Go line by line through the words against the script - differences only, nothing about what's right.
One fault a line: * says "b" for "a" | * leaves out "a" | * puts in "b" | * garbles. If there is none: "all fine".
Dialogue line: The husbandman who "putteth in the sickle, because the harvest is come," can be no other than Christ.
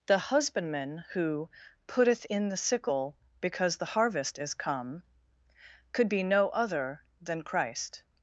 * says "could" for "can"